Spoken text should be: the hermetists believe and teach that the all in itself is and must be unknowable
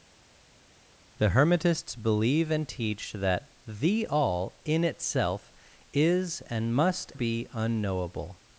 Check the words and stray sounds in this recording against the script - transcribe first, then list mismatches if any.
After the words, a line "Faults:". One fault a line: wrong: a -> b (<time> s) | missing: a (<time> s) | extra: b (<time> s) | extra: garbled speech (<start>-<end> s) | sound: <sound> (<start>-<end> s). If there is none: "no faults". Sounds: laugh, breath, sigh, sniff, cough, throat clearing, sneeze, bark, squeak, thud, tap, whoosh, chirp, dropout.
the hermetists believe and teach that the all in itself is and must be unknowable
Faults:
no faults